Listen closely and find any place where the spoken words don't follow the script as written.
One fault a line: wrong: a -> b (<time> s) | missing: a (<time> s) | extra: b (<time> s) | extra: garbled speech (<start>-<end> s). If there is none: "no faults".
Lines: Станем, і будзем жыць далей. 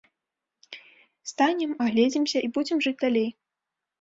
extra: агледзімся (1.9 s)